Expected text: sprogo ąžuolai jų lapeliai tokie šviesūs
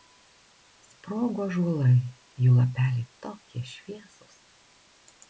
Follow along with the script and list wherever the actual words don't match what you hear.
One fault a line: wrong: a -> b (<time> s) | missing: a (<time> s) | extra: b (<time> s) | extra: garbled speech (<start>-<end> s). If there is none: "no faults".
no faults